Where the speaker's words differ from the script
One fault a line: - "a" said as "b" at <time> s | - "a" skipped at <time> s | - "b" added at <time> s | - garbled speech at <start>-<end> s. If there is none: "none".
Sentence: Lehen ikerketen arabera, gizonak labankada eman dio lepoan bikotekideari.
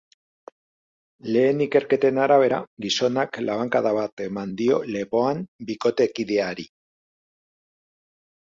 - "bat" added at 4.0 s